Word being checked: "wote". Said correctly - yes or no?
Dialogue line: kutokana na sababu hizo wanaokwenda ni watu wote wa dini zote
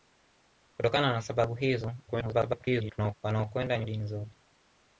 no